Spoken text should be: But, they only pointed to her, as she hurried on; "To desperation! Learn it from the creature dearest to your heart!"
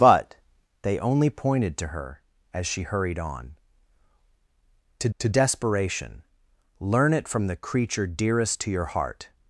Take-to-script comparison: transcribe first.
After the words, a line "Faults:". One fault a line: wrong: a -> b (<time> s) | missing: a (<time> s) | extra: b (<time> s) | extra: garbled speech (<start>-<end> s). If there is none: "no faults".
But, they only pointed to her, as she hurried on; "To to desperation! Learn it from the creature dearest to your heart!"
Faults:
extra: to (5.2 s)